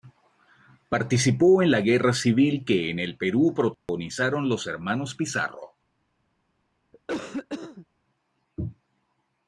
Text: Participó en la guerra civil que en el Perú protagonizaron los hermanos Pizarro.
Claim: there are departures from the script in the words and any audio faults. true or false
true